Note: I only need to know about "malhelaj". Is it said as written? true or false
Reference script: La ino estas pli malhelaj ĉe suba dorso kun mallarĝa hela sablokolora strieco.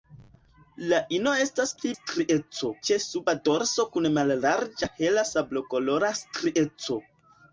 false